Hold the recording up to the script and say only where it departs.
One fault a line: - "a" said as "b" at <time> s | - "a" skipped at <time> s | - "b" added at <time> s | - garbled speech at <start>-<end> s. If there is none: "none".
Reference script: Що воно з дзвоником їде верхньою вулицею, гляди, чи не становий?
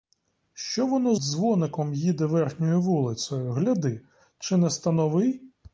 - "з" skipped at 1.1 s